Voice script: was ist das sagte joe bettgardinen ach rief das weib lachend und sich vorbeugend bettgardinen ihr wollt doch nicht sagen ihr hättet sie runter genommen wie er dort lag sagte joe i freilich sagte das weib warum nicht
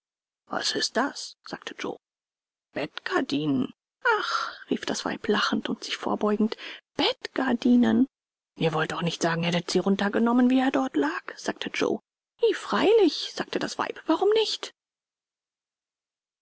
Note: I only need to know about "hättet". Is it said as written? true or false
true